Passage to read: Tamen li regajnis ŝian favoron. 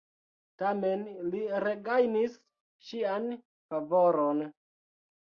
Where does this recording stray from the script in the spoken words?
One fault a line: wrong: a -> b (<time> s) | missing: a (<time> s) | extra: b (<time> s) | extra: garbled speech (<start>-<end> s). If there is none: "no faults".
no faults